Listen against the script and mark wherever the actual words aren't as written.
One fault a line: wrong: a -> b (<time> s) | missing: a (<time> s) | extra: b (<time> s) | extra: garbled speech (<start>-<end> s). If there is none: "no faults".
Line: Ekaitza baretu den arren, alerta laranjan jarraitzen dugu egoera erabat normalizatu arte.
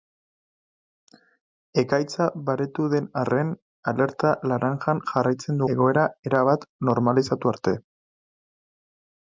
missing: dugu (5.6 s)